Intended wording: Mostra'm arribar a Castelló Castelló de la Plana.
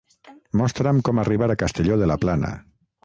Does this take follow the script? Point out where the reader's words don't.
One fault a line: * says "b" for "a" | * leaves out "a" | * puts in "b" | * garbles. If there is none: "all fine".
* puts in "com"
* leaves out "Castelló"